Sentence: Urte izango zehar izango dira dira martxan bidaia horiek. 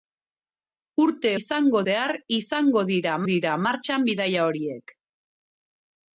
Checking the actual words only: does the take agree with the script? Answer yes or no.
yes